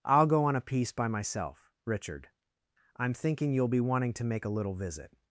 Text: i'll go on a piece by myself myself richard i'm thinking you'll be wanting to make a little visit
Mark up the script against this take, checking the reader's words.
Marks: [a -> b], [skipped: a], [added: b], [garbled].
i'll go on a piece by myself [skipped: myself] richard i'm thinking you'll be wanting to make a little visit